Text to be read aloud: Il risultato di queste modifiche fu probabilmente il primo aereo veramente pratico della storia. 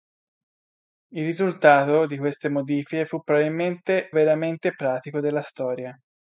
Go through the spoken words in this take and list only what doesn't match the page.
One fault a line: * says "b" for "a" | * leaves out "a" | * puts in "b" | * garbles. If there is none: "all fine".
* leaves out "il primo aereo"